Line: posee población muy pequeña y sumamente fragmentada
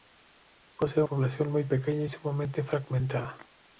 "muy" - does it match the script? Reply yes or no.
yes